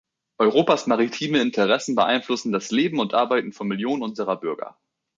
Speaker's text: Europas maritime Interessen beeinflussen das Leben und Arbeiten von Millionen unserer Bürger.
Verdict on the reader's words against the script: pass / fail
pass